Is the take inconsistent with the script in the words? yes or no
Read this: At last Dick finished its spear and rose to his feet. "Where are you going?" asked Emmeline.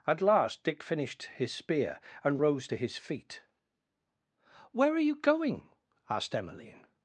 yes